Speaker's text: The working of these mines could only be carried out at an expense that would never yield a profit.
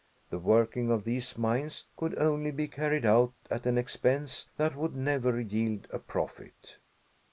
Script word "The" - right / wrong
right